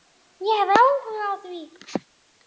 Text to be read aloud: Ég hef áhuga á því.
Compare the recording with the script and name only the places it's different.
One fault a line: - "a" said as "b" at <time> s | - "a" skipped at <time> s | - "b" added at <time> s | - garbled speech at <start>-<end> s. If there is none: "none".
none